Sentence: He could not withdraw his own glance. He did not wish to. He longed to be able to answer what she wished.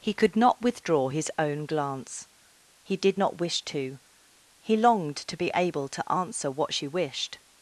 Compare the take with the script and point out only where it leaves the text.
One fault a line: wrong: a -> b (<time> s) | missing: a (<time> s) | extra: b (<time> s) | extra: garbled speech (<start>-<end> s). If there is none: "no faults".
no faults